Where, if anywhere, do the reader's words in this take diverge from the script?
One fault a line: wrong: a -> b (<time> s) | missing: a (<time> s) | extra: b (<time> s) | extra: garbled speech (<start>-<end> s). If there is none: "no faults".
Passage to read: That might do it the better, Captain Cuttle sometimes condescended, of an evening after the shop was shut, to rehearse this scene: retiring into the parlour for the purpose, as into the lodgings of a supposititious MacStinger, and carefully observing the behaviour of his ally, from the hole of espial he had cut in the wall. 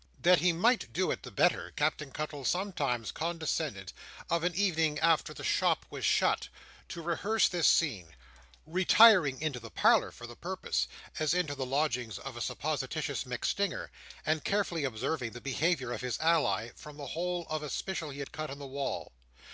extra: he (0.4 s)